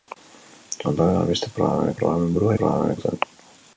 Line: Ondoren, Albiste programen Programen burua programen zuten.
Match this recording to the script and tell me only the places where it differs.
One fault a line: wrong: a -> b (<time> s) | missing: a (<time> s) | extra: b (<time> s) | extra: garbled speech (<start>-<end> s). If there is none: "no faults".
no faults